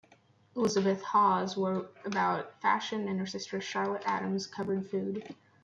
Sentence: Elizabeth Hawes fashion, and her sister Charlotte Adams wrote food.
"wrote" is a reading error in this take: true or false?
true